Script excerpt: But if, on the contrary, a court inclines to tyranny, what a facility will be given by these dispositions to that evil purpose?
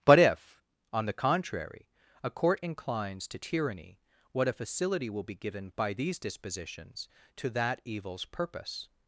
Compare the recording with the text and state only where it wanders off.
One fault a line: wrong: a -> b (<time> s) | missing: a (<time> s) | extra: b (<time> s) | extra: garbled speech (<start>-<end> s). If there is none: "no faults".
wrong: evil -> evils (7.8 s)